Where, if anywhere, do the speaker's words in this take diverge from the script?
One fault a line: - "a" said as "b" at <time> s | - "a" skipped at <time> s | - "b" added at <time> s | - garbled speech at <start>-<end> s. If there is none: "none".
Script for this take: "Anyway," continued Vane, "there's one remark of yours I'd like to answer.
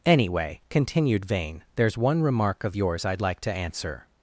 none